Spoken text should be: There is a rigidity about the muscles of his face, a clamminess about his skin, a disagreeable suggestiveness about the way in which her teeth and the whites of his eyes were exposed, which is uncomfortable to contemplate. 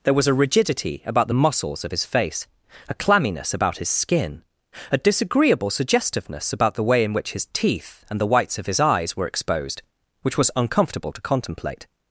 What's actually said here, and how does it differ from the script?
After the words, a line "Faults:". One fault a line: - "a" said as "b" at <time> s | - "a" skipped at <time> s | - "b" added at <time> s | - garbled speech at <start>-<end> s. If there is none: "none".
There was a rigidity about the muscles of his face, a clamminess about his skin, a disagreeable suggestiveness about the way in which his teeth and the whites of his eyes were exposed, which was uncomfortable to contemplate.
Faults:
- "is" said as "was" at 0.1 s
- "her" said as "his" at 7.3 s
- "is" said as "was" at 10.4 s